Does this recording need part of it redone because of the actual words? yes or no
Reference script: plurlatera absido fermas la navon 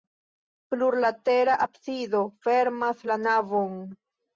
no